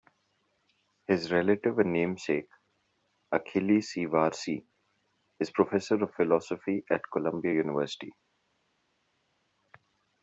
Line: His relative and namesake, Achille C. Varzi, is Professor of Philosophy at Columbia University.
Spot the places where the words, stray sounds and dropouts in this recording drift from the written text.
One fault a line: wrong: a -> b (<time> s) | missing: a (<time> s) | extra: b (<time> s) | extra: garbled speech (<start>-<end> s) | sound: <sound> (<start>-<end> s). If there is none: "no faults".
no faults